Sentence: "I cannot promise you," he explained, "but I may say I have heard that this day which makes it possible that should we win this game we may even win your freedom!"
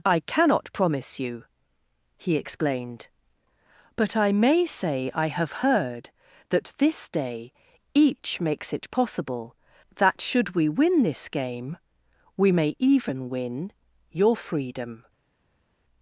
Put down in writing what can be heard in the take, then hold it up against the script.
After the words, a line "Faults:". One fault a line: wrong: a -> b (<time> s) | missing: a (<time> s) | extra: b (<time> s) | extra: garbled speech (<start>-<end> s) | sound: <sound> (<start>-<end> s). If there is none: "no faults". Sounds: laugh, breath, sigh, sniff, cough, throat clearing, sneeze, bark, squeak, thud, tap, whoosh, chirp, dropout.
"I cannot promise you," he explained, "but I may say I have heard that this day each makes it possible that should we win this game we may even win your freedom!"
Faults:
wrong: which -> each (7.9 s)